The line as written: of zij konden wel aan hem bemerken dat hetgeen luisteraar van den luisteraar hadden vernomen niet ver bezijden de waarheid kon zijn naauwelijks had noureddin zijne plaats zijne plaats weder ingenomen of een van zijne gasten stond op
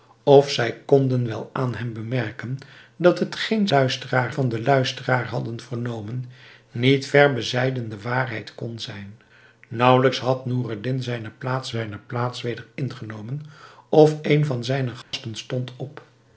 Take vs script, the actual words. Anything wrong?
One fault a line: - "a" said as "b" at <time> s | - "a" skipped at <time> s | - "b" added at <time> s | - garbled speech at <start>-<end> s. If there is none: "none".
none